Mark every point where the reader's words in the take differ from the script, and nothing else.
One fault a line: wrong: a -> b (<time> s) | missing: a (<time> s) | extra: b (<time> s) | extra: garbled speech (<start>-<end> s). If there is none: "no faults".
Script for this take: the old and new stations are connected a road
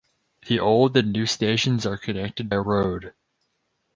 no faults